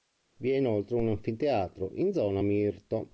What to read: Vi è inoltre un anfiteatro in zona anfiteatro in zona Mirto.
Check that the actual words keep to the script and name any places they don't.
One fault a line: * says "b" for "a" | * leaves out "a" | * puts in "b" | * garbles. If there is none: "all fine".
* leaves out "anfiteatro in zona"